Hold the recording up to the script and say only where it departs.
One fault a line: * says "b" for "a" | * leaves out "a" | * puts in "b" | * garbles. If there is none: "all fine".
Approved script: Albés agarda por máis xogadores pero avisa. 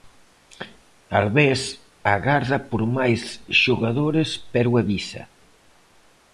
all fine